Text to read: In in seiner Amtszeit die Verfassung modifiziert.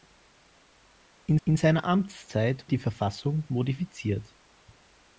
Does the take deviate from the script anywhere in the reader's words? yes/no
no